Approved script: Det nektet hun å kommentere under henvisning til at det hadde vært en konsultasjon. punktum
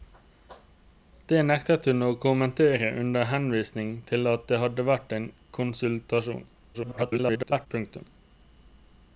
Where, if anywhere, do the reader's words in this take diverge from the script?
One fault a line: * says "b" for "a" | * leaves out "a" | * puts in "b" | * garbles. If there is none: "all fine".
* garbles